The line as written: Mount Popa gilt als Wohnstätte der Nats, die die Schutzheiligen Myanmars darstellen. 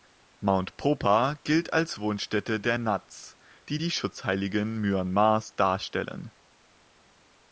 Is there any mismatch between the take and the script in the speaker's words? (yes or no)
no